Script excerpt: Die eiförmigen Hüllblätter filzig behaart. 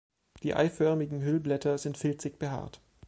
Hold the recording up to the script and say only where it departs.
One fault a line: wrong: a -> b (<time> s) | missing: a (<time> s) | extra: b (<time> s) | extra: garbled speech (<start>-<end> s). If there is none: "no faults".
extra: sind (1.8 s)